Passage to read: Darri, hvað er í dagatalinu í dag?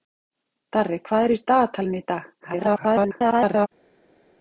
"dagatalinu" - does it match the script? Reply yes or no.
yes